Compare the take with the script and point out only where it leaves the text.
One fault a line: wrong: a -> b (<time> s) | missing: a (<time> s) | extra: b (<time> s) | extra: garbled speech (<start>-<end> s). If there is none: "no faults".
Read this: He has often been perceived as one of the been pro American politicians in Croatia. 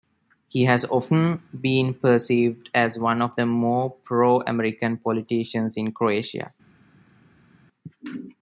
wrong: been -> more (3.4 s)